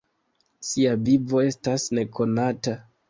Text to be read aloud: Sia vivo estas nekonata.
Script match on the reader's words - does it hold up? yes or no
yes